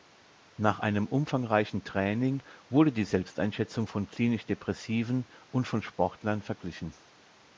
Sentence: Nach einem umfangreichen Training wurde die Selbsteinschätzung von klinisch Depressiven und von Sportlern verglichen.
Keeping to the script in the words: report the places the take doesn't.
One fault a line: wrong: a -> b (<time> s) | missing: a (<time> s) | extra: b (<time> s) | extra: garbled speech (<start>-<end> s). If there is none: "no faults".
no faults